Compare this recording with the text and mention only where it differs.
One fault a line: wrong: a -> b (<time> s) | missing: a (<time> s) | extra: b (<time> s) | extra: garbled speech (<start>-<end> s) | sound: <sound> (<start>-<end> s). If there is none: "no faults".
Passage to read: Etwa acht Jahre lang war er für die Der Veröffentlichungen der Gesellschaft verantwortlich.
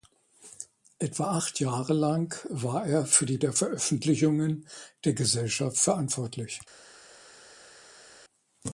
no faults